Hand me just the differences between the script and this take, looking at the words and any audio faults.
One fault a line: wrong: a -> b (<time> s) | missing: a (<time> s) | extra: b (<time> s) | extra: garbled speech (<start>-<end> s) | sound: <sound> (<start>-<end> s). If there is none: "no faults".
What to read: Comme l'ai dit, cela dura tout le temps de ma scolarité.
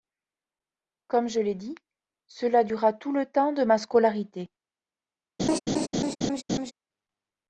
extra: je (1.3 s)
sound: laugh (5.4-6.7 s)